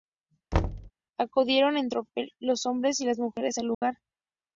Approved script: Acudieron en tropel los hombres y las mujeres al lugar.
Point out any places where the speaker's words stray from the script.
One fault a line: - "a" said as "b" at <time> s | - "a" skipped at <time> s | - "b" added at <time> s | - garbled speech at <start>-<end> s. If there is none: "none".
none